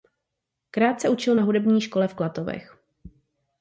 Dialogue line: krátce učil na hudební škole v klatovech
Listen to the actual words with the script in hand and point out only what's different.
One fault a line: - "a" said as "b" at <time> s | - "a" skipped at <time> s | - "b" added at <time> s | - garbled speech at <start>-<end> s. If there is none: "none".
none